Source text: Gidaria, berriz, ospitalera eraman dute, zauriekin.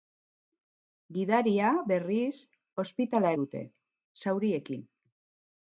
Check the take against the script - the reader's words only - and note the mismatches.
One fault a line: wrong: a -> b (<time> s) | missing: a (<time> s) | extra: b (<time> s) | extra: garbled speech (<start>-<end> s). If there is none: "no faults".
missing: eraman (3.3 s)